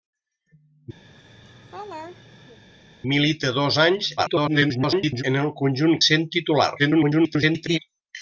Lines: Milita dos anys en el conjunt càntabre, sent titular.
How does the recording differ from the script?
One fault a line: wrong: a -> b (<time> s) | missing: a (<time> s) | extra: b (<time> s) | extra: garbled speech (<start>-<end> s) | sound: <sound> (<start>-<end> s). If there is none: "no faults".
sound: laugh (1.0-2.6 s)
extra: garbled speech (4.2-5.2 s)
missing: càntabre (6.0 s)
extra: garbled speech (6.8-7.8 s)